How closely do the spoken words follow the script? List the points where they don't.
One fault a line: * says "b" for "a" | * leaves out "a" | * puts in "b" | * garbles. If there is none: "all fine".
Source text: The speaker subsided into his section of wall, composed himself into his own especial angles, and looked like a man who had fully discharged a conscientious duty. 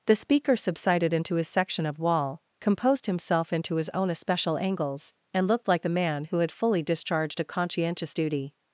* says "the" for "a"